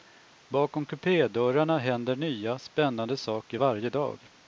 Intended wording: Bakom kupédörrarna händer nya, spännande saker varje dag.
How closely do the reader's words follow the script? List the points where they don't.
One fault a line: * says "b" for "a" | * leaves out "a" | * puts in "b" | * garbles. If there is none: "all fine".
all fine